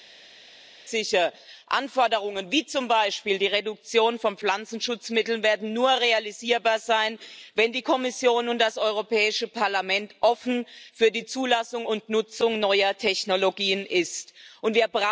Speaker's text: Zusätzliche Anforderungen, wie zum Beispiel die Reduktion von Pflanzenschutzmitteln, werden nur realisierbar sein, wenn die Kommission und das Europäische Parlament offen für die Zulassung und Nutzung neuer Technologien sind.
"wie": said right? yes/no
yes